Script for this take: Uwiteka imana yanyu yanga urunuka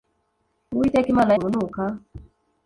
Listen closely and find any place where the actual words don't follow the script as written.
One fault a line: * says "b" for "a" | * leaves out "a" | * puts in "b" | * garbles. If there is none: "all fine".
* leaves out "yanyu yanga"